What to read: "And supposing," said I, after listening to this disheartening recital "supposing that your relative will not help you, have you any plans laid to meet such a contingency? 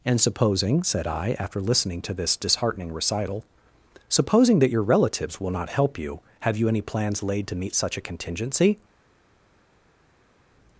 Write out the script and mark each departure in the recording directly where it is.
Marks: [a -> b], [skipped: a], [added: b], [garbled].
"And supposing," said I, after listening to this disheartening recital "supposing that your [relative -> relatives] will not help you, have you any plans laid to meet such a contingency?